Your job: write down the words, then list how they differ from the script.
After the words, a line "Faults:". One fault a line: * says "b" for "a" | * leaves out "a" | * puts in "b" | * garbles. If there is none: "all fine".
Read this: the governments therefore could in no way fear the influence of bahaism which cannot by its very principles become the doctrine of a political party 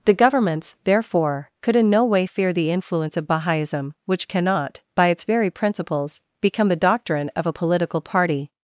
the governments therefore could in no way fear the influence of bahaism which cannot by its very principles become the doctrine of a political party
Faults:
all fine